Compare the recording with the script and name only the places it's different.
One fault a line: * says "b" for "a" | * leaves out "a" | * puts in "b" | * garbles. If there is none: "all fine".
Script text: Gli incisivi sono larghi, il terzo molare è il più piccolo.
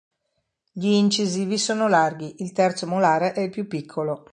all fine